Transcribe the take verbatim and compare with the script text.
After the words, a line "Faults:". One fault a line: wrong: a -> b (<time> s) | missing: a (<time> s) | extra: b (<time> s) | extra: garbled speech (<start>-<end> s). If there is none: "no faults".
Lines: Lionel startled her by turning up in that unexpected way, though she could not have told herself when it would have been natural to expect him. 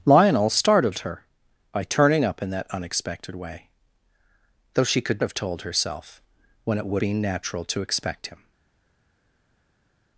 Lionel startled her by turning up in that unexpected way, though she could have told herself when it would been natural to expect him.
Faults:
missing: not (5.2 s)
missing: have (7.0 s)